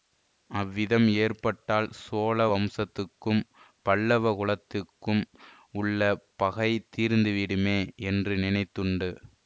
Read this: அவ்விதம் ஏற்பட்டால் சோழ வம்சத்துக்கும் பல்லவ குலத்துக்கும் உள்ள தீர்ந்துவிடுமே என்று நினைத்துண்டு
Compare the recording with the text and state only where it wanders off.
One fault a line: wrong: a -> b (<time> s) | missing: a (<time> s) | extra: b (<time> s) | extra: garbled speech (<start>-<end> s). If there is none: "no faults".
extra: பகை (6.4 s)